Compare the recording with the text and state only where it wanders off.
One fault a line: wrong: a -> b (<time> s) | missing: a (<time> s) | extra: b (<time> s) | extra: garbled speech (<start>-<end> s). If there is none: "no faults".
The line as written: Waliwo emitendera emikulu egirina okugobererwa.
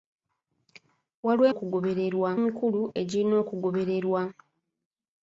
wrong: emitendera -> okugobererwa (1.5 s)